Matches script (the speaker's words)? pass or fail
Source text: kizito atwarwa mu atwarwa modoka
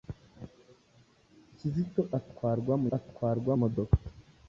pass